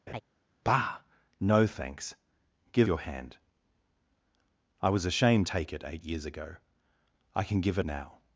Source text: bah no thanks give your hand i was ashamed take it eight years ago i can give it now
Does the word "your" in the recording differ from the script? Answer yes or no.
no